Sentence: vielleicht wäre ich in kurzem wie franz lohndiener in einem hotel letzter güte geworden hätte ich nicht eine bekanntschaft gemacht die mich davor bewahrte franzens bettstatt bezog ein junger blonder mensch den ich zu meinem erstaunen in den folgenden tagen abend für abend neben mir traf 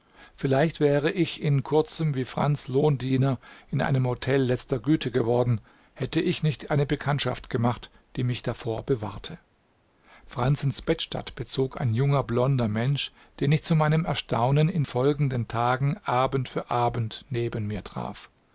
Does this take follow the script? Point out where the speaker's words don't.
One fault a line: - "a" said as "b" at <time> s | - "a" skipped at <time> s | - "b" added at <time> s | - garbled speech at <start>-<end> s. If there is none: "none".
- "den" skipped at 14.8 s